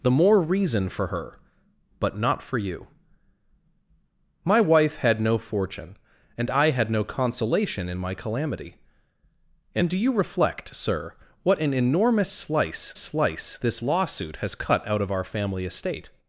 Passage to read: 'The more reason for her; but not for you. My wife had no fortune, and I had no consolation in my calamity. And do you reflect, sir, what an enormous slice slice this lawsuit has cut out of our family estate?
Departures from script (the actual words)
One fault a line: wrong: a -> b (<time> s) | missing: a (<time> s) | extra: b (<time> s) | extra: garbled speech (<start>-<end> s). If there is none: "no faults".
no faults